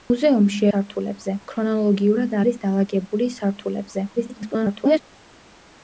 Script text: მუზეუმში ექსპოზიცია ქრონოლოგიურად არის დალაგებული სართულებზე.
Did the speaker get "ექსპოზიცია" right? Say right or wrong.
wrong